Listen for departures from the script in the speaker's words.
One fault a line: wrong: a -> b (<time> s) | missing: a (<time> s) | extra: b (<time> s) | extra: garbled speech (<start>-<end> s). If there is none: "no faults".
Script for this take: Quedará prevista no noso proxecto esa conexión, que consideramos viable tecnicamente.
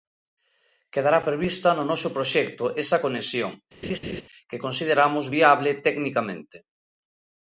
no faults